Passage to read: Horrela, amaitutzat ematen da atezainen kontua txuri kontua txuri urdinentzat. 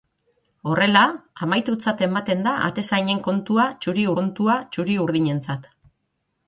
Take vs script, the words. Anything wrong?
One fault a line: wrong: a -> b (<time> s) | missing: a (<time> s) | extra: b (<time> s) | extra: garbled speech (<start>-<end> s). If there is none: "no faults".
no faults